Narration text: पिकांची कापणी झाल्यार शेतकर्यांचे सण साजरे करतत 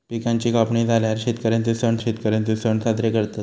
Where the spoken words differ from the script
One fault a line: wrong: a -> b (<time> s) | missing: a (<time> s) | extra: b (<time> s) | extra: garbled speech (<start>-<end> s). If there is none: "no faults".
extra: शेतकर्यांचे सण (2.0 s)